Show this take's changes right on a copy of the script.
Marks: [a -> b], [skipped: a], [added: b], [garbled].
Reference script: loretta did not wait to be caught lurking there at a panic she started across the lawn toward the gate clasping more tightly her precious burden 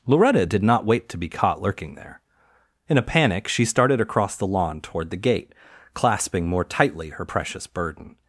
loretta did not wait to be caught lurking there [at -> in] a panic she started across the lawn toward the gate clasping more tightly her precious burden